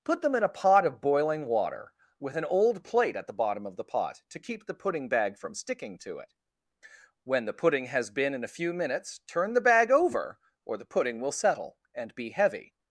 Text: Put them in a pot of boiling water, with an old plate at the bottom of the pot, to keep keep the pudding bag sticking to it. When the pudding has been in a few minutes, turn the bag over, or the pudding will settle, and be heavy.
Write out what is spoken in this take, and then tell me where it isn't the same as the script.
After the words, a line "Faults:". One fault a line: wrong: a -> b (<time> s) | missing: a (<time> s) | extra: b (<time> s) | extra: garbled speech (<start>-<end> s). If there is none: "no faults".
Put them in a pot of boiling water, with an old plate at the bottom of the pot, to keep the pudding bag from sticking to it. When the pudding has been in a few minutes, turn the bag over, or the pudding will settle, and be heavy.
Faults:
missing: keep (4.7 s)
extra: from (5.4 s)